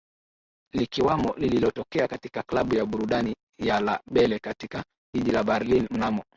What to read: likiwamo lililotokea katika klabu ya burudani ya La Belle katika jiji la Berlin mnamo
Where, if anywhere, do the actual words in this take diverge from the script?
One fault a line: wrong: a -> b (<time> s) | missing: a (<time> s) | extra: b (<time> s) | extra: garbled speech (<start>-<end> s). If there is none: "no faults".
no faults